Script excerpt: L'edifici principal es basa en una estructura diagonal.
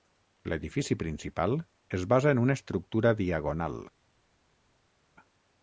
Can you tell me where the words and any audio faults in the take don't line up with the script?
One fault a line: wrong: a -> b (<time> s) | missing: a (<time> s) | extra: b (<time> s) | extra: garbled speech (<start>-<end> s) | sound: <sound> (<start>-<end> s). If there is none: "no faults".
no faults